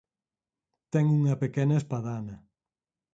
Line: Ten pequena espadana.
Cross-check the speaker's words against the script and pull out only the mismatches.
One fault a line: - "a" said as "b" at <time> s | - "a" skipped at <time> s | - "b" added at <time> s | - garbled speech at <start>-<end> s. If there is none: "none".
- "unha" added at 1.2 s